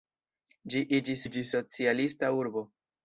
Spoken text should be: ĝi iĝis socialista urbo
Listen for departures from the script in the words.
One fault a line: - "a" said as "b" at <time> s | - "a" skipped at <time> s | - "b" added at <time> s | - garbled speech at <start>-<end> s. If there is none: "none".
- "iĝis" added at 1.3 s